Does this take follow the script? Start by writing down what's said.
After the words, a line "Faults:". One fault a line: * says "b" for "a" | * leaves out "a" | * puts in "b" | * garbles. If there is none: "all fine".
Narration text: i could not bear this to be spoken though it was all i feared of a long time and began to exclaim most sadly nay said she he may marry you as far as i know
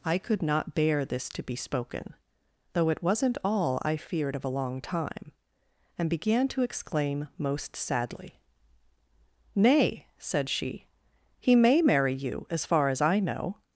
i could not bear this to be spoken though it wasn't all i feared of a long time and began to exclaim most sadly nay said she he may marry you as far as i know
Faults:
* says "wasn't" for "was"